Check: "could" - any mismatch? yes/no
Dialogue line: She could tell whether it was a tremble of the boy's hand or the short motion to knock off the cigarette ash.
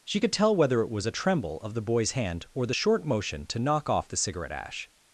no